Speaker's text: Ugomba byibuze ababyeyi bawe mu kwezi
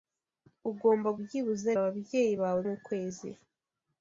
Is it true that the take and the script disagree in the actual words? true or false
false